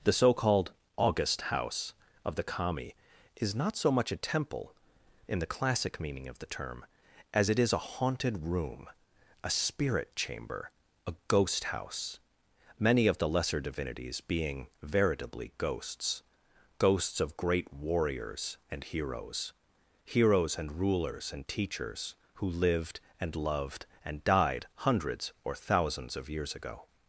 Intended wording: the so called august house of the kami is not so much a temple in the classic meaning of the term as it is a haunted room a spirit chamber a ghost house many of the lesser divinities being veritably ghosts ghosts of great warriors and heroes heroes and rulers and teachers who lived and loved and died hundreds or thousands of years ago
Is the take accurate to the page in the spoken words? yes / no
yes